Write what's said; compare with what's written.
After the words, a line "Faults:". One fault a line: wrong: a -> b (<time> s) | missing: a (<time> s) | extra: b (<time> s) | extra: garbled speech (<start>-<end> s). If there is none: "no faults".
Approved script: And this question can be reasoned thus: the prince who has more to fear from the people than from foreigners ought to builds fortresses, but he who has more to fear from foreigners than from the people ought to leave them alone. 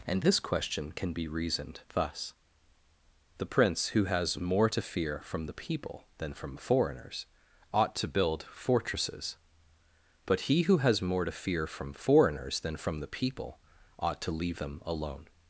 And this question can be reasoned thus: the prince who has more to fear from the people than from foreigners ought to build fortresses, but he who has more to fear from foreigners than from the people ought to leave them alone.
Faults:
wrong: builds -> build (8.1 s)